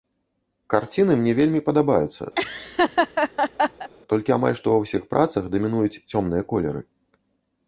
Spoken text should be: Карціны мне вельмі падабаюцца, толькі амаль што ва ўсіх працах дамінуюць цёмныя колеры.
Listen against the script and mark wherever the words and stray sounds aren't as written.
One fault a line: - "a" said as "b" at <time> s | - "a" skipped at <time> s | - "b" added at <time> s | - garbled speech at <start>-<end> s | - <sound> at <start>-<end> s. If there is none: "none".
- laugh at 2.3-3.9 s